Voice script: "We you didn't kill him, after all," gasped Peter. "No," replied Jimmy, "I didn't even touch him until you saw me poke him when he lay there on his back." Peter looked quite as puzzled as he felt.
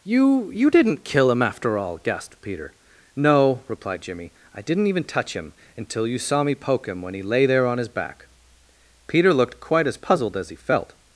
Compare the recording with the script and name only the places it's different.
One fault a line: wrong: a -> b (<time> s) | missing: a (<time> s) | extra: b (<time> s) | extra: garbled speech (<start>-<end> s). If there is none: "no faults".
wrong: We -> You (0.0 s)